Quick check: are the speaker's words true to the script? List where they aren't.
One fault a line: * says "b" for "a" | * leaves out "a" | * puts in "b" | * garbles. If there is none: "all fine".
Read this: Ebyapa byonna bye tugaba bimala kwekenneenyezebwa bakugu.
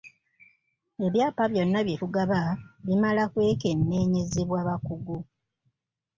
all fine